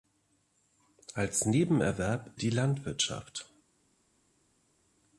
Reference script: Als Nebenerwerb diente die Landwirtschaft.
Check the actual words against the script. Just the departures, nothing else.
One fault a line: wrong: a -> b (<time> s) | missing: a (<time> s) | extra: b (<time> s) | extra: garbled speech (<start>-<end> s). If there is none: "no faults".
missing: diente (2.3 s)